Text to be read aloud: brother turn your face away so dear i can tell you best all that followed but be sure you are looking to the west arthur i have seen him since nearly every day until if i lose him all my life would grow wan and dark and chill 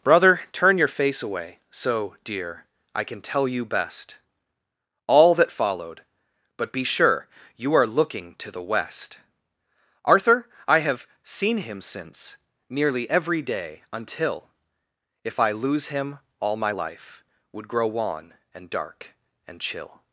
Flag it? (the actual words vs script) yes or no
no